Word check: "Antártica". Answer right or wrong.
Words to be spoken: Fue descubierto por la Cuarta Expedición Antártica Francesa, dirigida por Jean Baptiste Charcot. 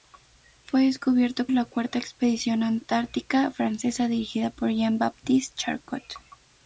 right